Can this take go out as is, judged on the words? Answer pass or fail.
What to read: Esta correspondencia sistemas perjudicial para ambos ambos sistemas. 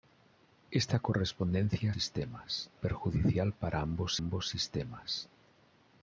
pass